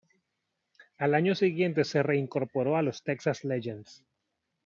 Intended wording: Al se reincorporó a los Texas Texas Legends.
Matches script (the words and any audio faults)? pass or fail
fail